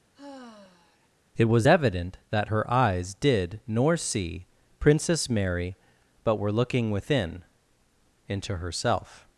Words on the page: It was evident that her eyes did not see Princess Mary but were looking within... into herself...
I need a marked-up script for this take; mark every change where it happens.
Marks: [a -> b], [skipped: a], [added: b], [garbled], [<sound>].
[sigh] It was evident that her eyes did [not -> nor] see Princess Mary but were looking within... into herself...